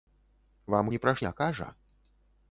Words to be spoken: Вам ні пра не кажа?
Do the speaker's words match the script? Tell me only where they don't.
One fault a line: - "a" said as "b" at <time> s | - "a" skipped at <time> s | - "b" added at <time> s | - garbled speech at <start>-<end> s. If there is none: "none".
none